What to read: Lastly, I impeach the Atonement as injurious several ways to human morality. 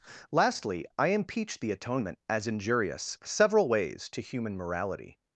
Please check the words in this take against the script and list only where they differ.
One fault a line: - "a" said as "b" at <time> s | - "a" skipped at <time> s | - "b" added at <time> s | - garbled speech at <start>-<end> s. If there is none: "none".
none